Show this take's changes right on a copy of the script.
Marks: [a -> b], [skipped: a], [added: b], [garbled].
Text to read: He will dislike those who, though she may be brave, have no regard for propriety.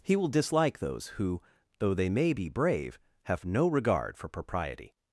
He will dislike those who, though [she -> they] may be brave, have no regard for propriety.